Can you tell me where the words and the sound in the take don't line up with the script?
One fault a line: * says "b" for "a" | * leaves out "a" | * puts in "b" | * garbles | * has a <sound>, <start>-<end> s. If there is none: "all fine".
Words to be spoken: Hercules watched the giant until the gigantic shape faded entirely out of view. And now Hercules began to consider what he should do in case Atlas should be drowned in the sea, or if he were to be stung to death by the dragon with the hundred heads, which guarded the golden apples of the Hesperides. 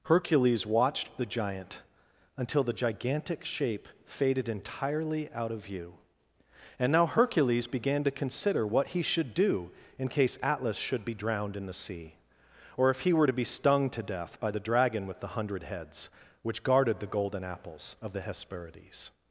all fine